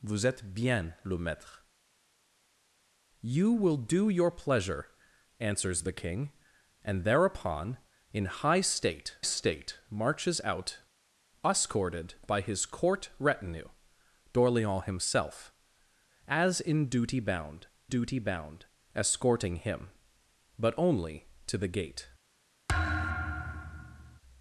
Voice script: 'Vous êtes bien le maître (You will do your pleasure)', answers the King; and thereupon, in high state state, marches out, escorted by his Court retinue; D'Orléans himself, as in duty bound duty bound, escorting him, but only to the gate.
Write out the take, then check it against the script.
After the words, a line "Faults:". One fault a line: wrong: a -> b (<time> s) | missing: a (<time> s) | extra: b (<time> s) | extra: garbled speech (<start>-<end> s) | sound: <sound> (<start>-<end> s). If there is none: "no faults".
'Vous êtes bien le maître (You will do your pleasure)', answers the King; and thereupon, in high state state, marches out, escorted by his Court retinue; D'Orléans himself, as in duty bound duty bound, escorting him, but only to the gate.
Faults:
sound: thud (22.7-24.2 s)